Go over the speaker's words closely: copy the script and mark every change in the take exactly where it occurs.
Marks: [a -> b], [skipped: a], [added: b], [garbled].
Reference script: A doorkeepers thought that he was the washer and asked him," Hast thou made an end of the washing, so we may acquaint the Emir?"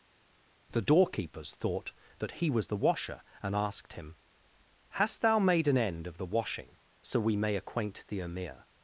[A -> The] doorkeepers thought that he was the washer and asked him," Hast thou made an end of the washing, so we may acquaint the Emir?"